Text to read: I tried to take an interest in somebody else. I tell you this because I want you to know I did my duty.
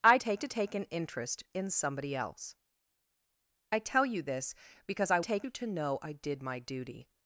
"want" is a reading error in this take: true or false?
true